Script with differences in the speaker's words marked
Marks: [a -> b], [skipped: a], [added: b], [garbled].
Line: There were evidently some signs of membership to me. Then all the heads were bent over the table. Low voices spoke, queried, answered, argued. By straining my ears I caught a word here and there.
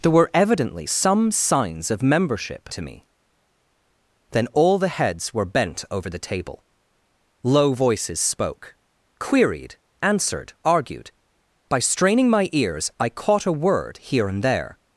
There were evidently some signs of membership to me. Then all the heads were bent over the table. Low voices spoke, queried, answered, argued. By straining my ears I caught a word here and there.